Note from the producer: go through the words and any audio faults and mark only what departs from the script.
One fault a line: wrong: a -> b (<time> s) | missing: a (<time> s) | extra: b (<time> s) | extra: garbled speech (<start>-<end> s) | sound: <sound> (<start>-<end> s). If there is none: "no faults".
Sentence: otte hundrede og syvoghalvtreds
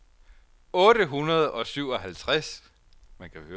no faults